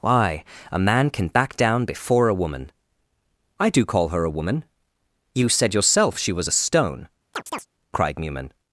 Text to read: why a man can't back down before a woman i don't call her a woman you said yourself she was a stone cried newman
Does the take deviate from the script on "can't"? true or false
true